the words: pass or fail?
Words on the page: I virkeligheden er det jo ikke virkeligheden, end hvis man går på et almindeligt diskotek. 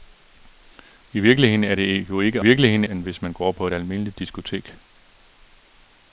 pass